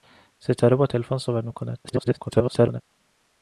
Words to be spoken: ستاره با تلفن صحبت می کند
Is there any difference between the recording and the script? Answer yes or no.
yes